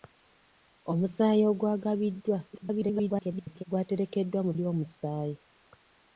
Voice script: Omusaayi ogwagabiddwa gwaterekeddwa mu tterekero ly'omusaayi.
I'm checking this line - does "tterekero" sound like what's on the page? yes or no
no